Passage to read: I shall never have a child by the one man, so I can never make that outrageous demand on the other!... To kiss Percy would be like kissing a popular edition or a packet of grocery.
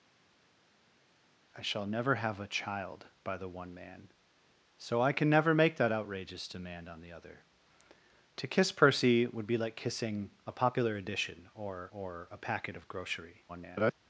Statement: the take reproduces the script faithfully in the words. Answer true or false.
false